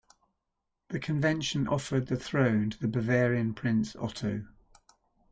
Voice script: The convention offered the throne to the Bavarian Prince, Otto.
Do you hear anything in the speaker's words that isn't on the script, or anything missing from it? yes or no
no